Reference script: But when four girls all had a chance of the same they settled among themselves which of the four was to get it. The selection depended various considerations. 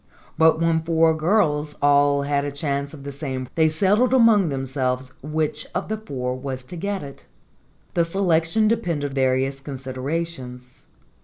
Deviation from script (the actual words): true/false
false